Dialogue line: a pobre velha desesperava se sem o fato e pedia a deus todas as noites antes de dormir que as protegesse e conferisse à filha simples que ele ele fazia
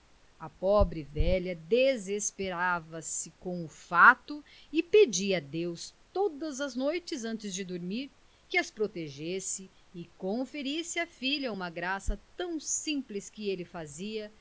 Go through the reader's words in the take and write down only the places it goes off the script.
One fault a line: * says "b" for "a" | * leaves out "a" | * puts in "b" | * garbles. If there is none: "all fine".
* says "com" for "sem"
* puts in "uma graça tão"
* leaves out "ele"